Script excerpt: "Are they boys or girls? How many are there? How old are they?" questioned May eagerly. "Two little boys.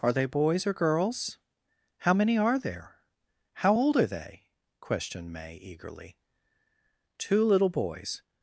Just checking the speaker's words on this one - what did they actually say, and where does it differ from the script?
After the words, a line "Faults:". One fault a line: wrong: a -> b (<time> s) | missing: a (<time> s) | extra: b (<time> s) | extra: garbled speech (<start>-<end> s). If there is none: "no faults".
"Are they boys or girls? How many are there? How old are they?" questioned May eagerly. "Two little boys.
Faults:
no faults